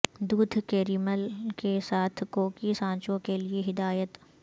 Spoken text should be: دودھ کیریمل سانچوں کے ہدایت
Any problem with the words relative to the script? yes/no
yes